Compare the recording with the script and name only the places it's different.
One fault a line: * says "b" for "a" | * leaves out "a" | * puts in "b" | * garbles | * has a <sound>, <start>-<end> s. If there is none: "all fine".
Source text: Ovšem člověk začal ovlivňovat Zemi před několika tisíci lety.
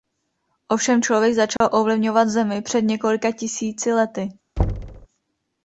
* has a dropout, 1.6-1.6 s
* has a thud, 4.6-5.1 s